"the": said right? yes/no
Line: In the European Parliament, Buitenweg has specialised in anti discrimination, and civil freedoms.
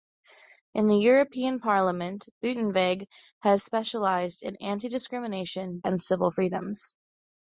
yes